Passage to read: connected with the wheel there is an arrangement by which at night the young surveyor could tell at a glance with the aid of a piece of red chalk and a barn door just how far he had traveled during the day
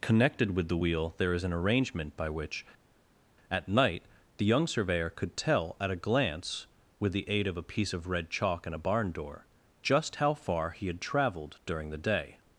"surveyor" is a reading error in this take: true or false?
false